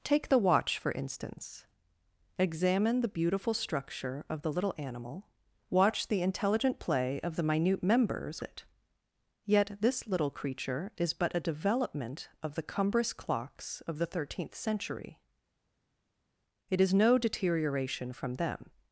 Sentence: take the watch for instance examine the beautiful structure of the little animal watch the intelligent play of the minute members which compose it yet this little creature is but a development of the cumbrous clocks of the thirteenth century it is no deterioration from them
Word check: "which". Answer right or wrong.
wrong